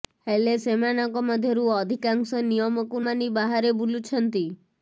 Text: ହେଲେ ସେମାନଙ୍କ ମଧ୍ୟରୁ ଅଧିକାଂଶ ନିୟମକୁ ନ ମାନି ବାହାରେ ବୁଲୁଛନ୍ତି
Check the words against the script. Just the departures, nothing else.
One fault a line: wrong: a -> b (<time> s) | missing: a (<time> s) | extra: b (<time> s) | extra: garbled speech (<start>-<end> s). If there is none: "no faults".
missing: ନ (3.0 s)